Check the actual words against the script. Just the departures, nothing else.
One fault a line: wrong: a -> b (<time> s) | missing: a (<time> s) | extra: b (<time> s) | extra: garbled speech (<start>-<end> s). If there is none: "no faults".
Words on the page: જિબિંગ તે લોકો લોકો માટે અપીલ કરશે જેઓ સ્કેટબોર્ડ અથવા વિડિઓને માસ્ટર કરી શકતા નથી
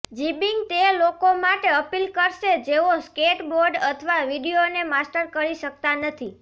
missing: લોકો (1.3 s)